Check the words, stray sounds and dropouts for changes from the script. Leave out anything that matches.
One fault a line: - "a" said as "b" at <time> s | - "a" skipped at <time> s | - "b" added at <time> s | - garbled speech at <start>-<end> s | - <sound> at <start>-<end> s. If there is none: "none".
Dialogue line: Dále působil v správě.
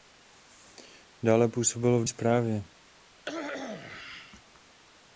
- cough at 3.2-4.4 s